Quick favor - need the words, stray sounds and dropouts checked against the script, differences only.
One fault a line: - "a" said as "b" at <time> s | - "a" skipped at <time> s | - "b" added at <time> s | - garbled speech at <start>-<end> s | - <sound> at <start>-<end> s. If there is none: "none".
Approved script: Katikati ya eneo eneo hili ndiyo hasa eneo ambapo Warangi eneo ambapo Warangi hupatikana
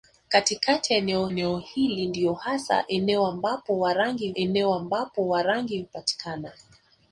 none